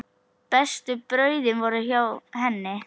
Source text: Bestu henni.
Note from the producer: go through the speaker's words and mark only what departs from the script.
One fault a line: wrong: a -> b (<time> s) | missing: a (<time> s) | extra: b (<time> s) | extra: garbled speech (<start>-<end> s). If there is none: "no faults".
extra: brauðin voru hjá (1.1 s)